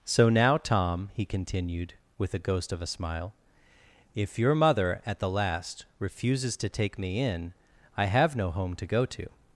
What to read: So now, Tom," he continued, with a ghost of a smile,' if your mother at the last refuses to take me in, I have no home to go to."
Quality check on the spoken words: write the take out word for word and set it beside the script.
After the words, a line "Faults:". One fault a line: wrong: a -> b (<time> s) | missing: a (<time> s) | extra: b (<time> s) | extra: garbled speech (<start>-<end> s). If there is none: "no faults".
So now, Tom," he continued, with a ghost of a smile,' if your mother at the last refuses to take me in, I have no home to go to."
Faults:
no faults